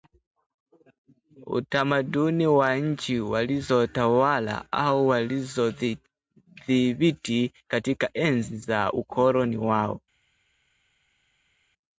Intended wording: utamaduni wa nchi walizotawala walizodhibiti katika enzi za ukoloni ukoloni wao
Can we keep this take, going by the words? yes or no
no